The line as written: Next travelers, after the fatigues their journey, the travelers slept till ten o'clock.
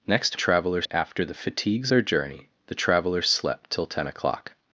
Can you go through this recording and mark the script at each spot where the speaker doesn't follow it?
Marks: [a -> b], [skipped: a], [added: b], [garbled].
Next travelers, after the fatigues their journey, the travelers slept till ten o'clock.